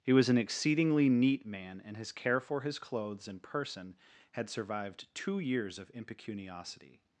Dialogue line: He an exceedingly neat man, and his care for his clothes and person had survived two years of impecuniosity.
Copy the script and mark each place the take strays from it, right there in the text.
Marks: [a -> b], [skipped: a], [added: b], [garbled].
He [added: was] an exceedingly neat man, and his care for his clothes and person had survived two years of impecuniosity.